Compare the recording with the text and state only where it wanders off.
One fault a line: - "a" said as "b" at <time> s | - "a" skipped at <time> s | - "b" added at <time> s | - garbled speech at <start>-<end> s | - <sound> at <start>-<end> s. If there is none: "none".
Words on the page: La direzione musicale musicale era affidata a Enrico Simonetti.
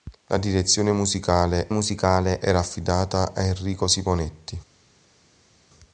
none